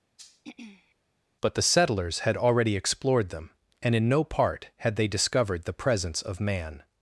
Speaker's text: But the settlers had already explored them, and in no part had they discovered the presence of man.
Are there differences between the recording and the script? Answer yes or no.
no